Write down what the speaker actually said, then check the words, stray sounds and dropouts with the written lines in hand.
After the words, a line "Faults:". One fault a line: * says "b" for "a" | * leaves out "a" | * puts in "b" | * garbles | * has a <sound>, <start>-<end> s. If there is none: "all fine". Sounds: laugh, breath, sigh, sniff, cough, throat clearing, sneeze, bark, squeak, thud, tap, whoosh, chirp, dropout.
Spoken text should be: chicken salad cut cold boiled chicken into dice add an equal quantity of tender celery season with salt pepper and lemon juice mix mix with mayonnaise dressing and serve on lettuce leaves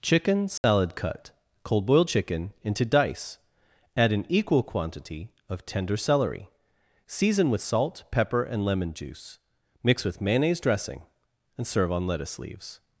chicken salad cut cold boiled chicken into dice add an equal quantity of tender celery season with salt pepper and lemon juice mix with mayonnaise dressing and serve on lettuce leaves
Faults:
* has a dropout, 0.6-0.6 s
* leaves out "mix"